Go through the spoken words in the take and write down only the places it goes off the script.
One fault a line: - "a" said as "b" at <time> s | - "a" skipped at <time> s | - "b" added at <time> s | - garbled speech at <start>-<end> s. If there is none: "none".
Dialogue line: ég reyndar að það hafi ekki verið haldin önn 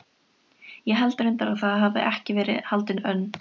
- "held" added at 1.0 s